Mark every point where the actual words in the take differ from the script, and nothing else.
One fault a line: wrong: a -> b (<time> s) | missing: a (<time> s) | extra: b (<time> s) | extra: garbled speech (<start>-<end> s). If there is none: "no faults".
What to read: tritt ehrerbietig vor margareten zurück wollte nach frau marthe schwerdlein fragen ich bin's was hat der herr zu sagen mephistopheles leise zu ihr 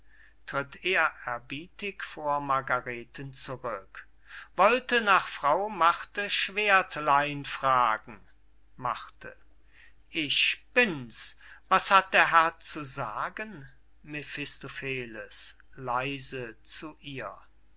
no faults